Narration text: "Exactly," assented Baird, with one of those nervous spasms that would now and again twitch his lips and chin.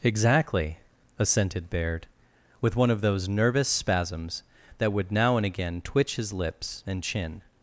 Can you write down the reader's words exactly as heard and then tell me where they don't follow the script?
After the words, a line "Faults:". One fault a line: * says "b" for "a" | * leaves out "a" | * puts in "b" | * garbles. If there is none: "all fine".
"Exactly," assented Baird, with one of those nervous spasms that would now and again twitch his lips and chin.
Faults:
all fine